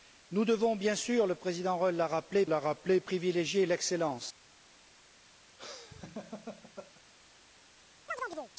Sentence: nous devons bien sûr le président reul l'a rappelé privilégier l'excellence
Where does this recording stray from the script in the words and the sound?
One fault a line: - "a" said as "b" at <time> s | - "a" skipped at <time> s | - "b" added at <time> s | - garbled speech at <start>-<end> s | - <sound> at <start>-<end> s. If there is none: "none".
- "l'a rappelé" added at 2.5 s
- laugh at 5.6-7.0 s
- chirp at 8.1-8.5 s